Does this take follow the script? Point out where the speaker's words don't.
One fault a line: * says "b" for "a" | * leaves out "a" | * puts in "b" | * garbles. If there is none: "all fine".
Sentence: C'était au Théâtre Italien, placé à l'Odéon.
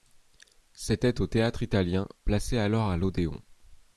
* puts in "alors"